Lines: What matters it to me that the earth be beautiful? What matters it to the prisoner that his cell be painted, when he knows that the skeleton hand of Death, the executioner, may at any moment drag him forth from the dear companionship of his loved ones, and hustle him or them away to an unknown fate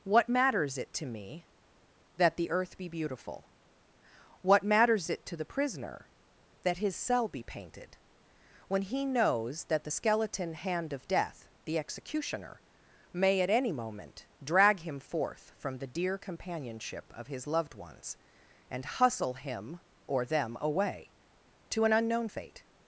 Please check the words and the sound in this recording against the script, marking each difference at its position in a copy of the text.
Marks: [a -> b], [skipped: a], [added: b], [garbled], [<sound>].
What matters it to me that the earth be beautiful? What matters it to the prisoner that his cell be painted, when he knows that the skeleton hand of Death, the executioner, may at any moment drag him forth from the dear companionship of his loved ones, and hustle him or them away to an unknown fate